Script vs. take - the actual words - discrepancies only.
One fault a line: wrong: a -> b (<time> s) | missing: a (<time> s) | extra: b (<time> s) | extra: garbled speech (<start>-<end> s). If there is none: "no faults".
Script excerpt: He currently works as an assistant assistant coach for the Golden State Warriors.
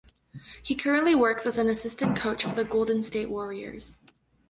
missing: assistant (2.2 s)